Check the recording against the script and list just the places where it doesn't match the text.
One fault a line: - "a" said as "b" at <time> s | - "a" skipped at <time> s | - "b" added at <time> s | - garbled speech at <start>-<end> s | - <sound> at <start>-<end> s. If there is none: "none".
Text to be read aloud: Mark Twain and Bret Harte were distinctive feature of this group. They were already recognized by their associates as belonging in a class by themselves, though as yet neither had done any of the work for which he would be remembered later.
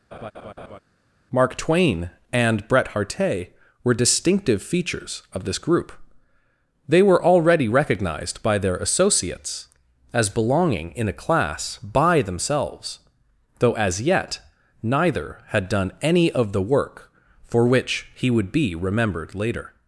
- laugh at 0.1-0.8 s
- "feature" said as "features" at 4.6 s